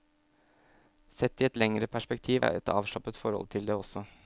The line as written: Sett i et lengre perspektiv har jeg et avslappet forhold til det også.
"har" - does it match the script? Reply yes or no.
no